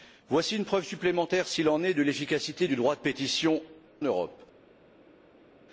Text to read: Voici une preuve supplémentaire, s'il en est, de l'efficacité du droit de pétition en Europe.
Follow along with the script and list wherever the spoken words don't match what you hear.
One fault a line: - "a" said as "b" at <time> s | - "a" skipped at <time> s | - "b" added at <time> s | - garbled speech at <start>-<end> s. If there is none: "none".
- "en" skipped at 3.6 s